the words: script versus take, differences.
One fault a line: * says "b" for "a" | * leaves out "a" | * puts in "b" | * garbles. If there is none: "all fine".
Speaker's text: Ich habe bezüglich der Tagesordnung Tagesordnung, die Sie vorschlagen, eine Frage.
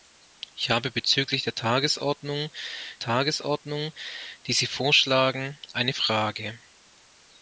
all fine